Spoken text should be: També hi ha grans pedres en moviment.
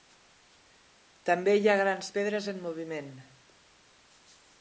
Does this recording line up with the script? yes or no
yes